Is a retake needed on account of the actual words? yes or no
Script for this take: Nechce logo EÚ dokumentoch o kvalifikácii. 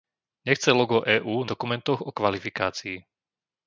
no